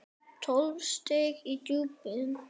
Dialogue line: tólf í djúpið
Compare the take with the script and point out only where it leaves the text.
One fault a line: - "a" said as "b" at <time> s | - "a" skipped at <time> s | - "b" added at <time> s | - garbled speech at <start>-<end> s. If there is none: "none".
- "stig" added at 0.9 s